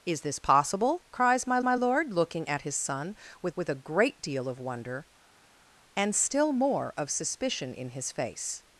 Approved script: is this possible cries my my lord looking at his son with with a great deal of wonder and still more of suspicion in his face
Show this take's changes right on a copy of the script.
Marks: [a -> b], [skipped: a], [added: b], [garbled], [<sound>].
is this possible cries my my lord looking at his son with with a great deal of wonder and still more of suspicion in his face